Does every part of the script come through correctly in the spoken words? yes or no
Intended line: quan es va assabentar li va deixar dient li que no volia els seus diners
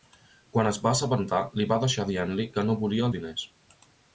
no